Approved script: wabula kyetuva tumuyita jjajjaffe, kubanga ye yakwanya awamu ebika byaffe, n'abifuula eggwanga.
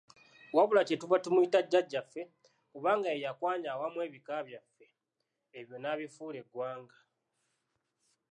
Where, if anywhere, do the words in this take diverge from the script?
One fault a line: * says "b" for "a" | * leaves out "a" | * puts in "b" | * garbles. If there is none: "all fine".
* puts in "ebyo"